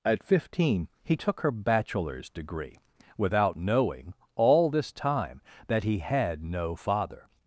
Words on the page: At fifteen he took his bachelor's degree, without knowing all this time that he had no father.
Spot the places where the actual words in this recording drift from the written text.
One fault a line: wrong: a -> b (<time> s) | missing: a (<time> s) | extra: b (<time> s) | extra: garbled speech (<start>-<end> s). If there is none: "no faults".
wrong: his -> her (1.4 s)